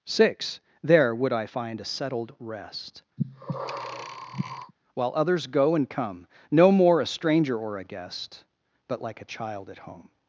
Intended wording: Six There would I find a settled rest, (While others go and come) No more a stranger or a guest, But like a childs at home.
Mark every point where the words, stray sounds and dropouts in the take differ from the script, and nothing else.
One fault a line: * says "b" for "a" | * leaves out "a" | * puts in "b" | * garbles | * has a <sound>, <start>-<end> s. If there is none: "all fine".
* has a breath, 3.2-4.7 s
* says "child" for "childs"